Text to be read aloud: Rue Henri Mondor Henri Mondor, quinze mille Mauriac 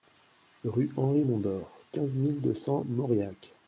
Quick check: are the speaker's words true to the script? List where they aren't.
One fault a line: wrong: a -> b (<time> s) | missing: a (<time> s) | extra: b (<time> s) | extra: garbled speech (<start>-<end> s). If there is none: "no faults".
wrong: Henri Mondor quinze mille -> quinze mille deux cents (1.9 s)